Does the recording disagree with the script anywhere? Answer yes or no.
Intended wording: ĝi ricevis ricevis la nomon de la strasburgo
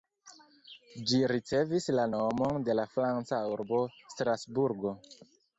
yes